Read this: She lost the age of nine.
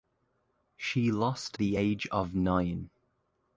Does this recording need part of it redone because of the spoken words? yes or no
no